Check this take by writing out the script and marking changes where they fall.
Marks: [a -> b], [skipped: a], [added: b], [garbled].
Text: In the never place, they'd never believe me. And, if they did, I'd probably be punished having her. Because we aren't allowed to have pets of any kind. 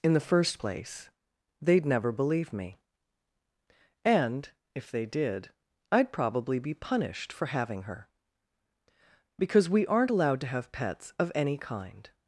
In the [never -> first] place, they'd never believe me. And, if they did, I'd probably be punished [added: for] having her. Because we aren't allowed to have pets of any kind.